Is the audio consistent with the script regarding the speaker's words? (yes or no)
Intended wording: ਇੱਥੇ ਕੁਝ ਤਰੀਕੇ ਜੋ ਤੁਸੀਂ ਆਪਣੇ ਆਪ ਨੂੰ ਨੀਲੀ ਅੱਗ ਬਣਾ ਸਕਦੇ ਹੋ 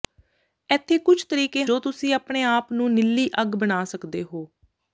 yes